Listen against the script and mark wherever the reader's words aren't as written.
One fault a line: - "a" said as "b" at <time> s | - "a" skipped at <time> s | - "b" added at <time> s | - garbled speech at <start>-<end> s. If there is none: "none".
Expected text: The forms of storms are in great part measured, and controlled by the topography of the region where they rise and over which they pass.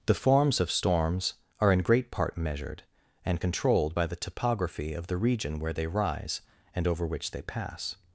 none